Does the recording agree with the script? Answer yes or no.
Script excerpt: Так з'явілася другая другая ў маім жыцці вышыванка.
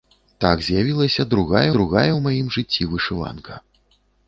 yes